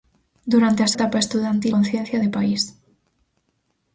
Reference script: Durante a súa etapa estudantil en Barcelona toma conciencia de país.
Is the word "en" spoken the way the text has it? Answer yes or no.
no